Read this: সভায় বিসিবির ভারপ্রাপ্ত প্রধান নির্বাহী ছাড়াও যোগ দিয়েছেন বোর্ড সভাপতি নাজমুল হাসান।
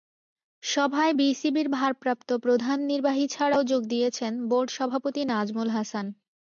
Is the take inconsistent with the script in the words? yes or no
no